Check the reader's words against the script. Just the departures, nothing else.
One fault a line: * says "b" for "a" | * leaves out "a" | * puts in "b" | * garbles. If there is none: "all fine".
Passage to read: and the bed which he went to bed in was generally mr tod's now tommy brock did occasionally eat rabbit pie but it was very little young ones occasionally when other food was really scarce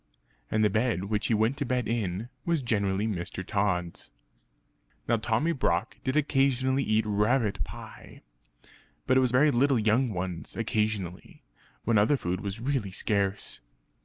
all fine